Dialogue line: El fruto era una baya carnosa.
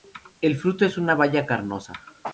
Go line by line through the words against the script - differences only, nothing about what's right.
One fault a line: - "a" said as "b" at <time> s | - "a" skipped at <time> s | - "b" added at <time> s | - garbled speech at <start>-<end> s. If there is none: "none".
- "era" said as "es" at 0.8 s